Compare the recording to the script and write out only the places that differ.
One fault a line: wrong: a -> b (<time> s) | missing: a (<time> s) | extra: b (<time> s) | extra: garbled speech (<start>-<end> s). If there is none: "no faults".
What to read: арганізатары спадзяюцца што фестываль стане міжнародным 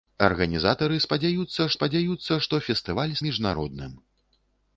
extra: спадзяюцца (1.8 s)
missing: стане (3.1 s)